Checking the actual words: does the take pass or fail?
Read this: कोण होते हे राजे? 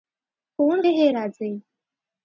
fail